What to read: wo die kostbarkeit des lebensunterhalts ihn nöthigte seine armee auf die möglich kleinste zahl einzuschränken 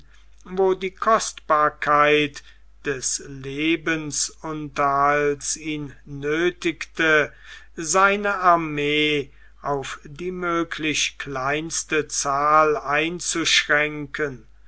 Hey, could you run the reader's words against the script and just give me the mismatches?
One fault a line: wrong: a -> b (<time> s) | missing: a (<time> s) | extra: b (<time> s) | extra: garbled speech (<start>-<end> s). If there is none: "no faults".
no faults